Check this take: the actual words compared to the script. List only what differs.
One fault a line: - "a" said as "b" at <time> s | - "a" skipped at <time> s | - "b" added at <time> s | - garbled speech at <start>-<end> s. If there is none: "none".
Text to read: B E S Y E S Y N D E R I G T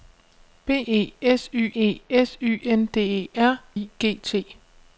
none